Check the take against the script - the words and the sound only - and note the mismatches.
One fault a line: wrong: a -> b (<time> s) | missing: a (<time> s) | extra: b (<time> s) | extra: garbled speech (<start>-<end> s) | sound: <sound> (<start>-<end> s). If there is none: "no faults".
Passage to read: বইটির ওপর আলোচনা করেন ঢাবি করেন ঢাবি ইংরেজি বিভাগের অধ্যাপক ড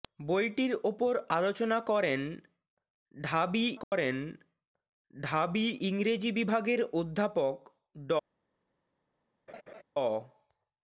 sound: dropout (3.8-3.9 s)
sound: laugh (9.5-9.8 s)